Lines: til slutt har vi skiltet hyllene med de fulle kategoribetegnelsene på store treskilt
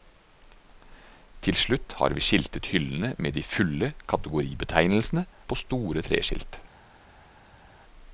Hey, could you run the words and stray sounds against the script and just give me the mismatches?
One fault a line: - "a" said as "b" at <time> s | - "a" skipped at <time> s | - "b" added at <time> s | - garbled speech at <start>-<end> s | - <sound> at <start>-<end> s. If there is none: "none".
none